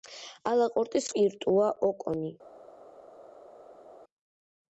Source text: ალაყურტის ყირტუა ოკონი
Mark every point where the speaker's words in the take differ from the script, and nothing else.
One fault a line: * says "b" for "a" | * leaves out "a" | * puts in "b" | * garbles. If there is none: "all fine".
all fine